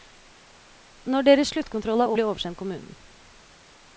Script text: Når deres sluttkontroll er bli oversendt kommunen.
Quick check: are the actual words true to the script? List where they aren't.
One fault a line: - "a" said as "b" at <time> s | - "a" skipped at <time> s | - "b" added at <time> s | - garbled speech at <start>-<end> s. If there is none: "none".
none